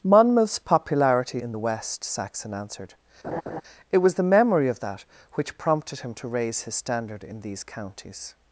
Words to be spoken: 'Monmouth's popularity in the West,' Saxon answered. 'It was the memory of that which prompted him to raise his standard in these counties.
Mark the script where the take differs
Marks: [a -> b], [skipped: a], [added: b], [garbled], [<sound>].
'Monmouth's popularity in the West,' Saxon answered. [laugh] 'It was the memory of that which prompted him to raise his standard in these counties.